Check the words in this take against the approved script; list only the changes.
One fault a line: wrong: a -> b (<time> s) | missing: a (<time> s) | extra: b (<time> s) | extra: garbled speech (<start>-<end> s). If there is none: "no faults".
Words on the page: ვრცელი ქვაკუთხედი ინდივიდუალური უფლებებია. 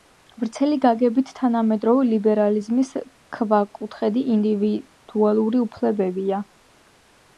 extra: გაგებით თანამედროვე ლიბერალიზმის (0.8 s)